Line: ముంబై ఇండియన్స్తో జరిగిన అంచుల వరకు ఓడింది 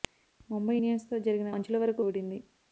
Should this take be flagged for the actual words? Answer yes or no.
no